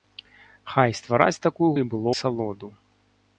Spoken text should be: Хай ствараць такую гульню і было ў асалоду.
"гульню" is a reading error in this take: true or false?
true